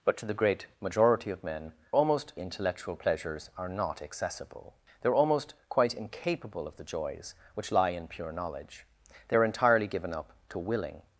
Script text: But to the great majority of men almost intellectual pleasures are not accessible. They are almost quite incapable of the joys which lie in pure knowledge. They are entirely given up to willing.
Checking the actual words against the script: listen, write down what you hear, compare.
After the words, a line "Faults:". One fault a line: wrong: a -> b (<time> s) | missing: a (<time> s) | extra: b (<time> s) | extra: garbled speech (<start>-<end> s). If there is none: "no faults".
But to the great majority of men almost intellectual pleasures are not accessible. They are almost quite incapable of the joys which lie in pure knowledge. They are entirely given up to willing.
Faults:
no faults